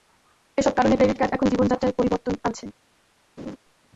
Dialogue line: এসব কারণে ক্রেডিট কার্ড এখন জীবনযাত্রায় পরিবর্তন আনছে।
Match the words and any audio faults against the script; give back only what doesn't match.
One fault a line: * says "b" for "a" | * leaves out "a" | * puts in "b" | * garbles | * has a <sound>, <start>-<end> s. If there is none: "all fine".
* has a laugh, 3.4-3.6 s